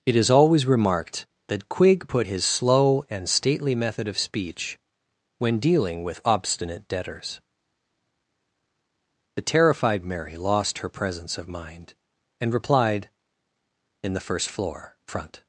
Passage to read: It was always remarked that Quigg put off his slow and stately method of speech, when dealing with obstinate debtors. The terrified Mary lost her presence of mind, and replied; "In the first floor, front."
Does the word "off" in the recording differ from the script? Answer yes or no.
yes